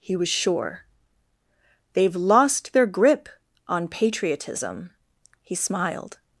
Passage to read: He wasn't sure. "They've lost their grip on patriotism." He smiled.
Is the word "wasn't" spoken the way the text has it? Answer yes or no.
no